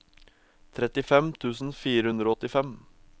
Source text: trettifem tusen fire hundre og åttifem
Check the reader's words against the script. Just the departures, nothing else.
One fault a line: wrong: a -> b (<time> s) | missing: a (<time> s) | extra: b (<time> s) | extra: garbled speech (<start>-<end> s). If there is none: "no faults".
no faults